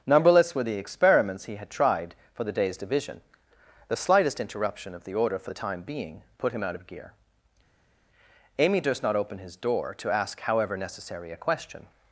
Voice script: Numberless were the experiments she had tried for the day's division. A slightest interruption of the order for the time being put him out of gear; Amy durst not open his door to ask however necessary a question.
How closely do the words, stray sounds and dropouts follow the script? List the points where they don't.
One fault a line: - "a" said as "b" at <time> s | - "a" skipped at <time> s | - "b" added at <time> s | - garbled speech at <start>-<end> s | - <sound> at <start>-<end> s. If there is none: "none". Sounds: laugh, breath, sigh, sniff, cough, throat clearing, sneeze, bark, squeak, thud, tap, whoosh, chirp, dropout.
- "she" said as "he" at 1.4 s
- "A" said as "The" at 3.9 s